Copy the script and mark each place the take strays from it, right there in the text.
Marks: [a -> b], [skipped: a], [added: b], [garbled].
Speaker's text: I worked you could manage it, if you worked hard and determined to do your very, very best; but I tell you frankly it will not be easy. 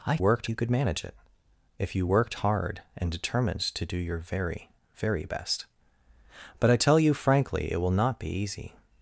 I worked you could manage it, if you worked hard and determined to do your very, very best; but I tell you frankly it will not be easy.